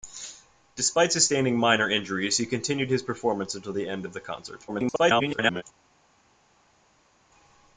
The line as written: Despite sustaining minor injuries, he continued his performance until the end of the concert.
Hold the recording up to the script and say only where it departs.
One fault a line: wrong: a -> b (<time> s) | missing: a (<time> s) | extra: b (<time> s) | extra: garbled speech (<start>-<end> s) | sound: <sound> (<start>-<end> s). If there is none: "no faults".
extra: garbled speech (4.7-5.6 s)